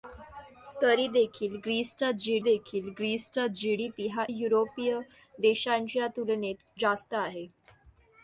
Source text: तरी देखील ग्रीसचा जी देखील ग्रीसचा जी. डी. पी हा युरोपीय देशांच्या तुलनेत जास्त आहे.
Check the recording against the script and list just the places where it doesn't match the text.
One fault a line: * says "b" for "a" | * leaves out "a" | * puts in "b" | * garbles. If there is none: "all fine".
all fine